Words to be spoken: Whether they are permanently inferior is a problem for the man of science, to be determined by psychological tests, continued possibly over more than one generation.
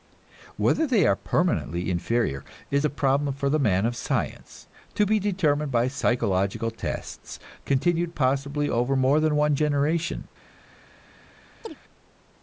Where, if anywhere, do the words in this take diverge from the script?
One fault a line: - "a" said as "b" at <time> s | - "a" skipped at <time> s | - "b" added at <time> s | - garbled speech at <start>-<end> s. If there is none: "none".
none